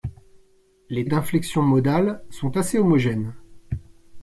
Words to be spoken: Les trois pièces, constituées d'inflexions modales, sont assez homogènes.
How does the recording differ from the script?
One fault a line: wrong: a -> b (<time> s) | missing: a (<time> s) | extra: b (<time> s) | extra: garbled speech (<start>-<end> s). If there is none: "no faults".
missing: trois pièces constituées (1.1 s)